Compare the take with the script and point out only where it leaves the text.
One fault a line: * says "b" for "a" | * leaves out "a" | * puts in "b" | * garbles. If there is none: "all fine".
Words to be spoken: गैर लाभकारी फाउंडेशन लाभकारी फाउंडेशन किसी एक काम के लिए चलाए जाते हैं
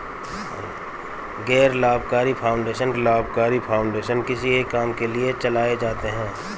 all fine